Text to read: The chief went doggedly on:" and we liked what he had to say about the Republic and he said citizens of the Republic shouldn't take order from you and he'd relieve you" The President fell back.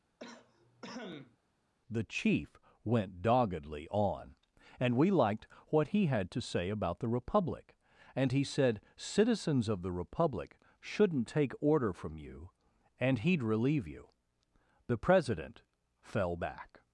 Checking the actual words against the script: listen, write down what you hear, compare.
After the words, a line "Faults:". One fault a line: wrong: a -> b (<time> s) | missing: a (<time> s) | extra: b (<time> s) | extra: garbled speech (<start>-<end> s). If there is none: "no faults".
The chief went doggedly on:" and we liked what he had to say about the Republic and he said citizens of the Republic shouldn't take order from you and he'd relieve you" The President fell back.
Faults:
no faults